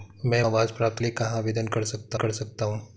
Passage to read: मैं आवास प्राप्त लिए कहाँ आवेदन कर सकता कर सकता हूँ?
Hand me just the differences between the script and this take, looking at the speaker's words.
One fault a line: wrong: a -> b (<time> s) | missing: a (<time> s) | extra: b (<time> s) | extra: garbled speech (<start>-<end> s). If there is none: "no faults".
no faults